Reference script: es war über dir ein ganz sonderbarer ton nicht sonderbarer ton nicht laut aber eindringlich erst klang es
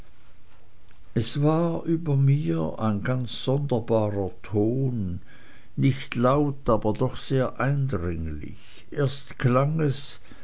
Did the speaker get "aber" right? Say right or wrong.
wrong